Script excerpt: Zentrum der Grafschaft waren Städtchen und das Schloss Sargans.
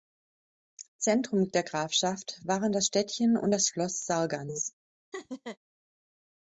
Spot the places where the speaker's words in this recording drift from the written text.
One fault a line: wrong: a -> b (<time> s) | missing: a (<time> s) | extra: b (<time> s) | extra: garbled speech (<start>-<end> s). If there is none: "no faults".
extra: das (2.7 s)